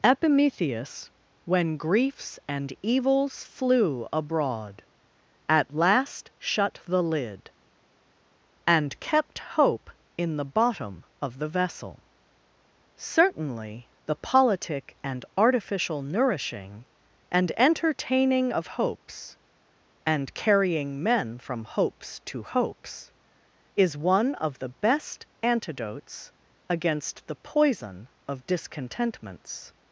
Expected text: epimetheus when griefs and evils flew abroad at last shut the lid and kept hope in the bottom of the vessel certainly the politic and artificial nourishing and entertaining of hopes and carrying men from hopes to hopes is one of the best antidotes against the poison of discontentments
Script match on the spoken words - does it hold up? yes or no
yes